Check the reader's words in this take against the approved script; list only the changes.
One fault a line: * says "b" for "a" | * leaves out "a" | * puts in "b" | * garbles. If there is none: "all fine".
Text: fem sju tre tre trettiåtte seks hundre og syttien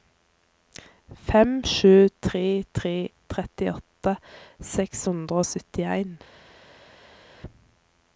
all fine